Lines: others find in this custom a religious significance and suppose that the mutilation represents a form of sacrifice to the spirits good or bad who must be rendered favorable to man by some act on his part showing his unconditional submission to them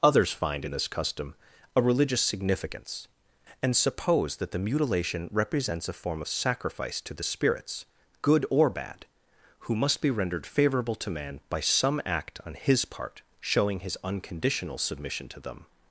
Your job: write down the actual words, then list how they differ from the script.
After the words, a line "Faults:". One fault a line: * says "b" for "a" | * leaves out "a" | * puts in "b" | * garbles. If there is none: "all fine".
others find in this custom a religious significance and suppose that the mutilation represents a form of sacrifice to the spirits good or bad who must be rendered favorable to man by some act on his part showing his unconditional submission to them
Faults:
all fine